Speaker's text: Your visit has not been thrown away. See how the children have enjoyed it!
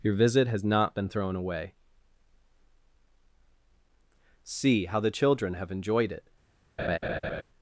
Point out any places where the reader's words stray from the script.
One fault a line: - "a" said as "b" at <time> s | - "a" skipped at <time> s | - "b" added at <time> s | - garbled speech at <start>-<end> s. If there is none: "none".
none